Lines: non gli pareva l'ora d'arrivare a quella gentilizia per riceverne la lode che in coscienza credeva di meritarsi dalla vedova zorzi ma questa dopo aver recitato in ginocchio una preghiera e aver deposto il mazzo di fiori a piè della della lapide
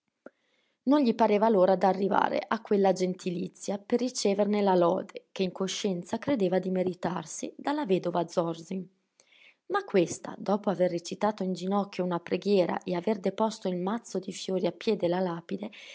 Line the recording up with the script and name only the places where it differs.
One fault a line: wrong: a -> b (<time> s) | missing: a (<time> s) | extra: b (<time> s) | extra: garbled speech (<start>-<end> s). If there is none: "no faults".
missing: della (15.2 s)